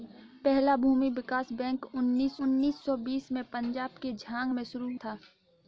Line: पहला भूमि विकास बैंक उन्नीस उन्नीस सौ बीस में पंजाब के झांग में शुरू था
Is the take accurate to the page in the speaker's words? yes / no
yes